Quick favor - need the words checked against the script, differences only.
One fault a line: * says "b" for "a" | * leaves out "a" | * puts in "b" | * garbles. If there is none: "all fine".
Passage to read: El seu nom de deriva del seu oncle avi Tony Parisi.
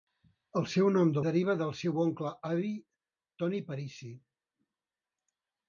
all fine